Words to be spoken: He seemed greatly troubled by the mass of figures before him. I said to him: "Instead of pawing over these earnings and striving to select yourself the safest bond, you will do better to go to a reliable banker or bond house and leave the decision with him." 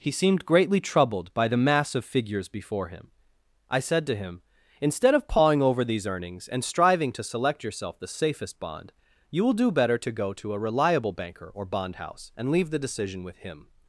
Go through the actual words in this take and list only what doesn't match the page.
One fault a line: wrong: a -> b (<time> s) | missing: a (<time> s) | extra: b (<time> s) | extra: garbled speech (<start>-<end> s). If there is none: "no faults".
no faults